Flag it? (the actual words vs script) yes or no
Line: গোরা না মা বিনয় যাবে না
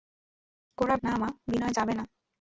no